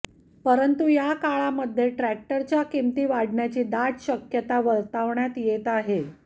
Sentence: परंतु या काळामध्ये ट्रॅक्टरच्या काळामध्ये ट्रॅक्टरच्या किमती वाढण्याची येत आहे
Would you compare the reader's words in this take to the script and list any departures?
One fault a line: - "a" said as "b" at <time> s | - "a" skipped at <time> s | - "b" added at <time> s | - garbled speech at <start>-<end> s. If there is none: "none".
- "काळामध्ये ट्रॅक्टरच्या किमती वाढण्याची" said as "किमती वाढण्याची दाट शक्यता वर्तवण्यात" at 2.7 s